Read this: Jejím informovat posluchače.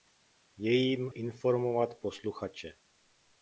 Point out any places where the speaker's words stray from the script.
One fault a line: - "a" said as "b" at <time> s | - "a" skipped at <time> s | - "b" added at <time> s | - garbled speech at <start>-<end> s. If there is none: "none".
none